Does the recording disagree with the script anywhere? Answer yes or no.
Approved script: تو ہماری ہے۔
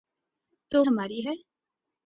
no